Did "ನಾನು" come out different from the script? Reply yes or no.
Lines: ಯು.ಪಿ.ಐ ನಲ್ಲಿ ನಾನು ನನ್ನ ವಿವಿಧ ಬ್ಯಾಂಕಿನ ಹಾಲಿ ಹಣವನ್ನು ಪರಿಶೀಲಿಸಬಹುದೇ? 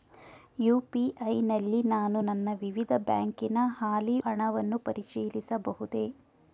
no